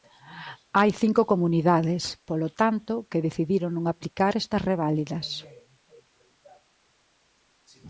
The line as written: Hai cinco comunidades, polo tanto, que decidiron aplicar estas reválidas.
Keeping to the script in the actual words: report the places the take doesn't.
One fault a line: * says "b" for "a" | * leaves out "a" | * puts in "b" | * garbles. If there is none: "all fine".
* puts in "non"